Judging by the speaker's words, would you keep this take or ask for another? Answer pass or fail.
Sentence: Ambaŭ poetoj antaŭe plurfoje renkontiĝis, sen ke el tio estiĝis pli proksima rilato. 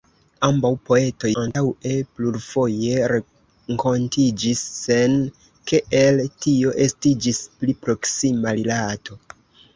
pass